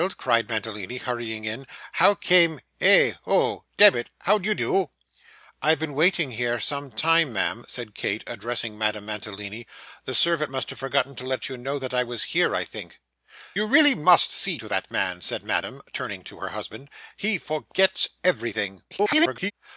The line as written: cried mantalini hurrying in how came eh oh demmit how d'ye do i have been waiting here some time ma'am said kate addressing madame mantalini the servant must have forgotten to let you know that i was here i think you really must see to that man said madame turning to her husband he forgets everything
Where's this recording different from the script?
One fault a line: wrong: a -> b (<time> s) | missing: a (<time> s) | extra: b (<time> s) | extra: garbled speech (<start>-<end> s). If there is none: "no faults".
extra: garbled speech (18.9-19.5 s)